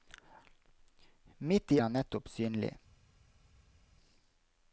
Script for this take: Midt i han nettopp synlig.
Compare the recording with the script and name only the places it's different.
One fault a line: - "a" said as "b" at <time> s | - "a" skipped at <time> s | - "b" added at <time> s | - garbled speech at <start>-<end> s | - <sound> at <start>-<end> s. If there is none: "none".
none